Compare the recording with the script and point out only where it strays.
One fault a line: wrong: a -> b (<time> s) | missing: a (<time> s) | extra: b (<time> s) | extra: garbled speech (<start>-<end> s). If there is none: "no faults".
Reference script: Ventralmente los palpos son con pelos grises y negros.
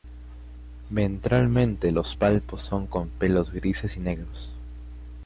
no faults